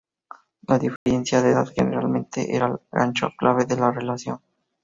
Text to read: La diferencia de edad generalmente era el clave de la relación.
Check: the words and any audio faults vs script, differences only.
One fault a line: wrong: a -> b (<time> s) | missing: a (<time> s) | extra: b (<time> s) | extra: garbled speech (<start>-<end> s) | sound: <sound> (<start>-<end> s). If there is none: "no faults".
sound: dropout (1.0-1.1 s)
extra: gancho (2.9 s)